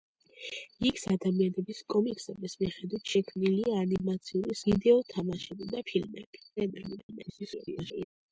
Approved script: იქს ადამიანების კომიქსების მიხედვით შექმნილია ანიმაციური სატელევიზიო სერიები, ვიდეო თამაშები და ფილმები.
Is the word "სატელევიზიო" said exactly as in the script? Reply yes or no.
no